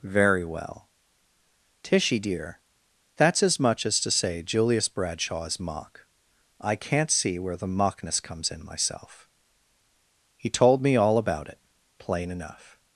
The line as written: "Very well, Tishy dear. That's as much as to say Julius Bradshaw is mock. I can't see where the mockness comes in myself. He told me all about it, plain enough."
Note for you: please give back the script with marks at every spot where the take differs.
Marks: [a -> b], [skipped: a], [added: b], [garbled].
"Very well, Tishy dear. That's as much as to say Julius Bradshaw is mock. I can't see where the mockness comes in myself. He told me all about it, plain enough."